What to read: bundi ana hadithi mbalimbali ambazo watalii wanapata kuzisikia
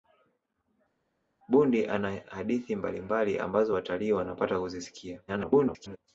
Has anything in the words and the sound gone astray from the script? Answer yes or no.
yes